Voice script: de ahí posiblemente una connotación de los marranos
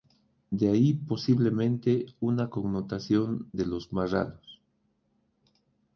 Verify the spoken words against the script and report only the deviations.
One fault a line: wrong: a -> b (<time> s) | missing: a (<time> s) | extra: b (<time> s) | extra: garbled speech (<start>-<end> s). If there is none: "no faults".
no faults